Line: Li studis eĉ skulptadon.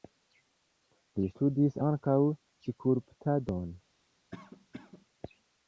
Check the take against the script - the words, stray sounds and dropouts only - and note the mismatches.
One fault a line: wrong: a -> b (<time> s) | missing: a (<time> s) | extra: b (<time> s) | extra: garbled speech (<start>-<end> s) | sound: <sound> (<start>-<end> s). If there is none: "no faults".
wrong: eĉ -> ankaŭ (1.9 s)
sound: cough (4.3-5.1 s)